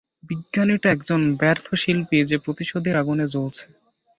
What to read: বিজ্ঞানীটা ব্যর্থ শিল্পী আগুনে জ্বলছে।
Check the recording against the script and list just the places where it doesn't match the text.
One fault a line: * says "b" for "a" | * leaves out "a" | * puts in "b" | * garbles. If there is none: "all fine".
* puts in "একজন"
* puts in "যে প্রতিশোধের"